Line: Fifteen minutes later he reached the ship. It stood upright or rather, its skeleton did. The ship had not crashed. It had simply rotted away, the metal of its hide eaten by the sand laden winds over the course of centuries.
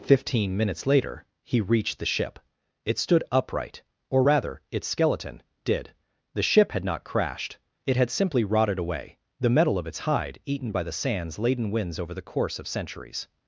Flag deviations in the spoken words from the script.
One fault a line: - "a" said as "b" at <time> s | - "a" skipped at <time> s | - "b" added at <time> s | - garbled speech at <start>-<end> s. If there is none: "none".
- "sand" said as "sands" at 10.9 s